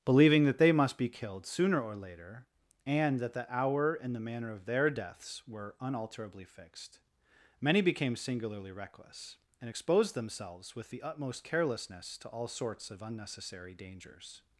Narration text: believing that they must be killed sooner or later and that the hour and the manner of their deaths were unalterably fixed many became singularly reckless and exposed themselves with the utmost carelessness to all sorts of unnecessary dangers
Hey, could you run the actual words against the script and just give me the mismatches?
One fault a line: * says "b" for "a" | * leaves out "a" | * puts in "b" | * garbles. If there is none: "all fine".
all fine